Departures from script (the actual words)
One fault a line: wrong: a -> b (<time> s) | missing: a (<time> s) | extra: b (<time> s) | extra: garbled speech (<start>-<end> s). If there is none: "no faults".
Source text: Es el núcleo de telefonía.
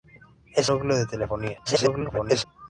missing: el (0.7 s)
extra: garbled speech (1.6-2.4 s)